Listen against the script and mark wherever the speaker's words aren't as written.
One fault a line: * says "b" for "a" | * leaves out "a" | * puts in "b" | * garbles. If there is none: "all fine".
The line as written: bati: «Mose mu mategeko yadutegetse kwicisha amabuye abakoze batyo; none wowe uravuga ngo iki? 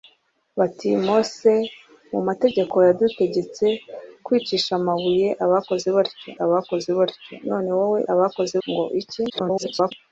* puts in "abakoze batyo"
* says "abakoze" for "uravuga"
* garbles